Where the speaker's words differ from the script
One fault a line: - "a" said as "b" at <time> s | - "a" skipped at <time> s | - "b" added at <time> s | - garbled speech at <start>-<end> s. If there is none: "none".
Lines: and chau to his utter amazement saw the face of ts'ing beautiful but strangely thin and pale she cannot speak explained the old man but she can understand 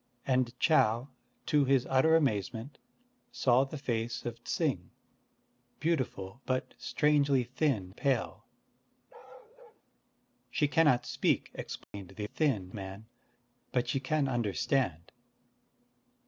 - "and" skipped at 7.9 s
- "old" said as "thin" at 12.2 s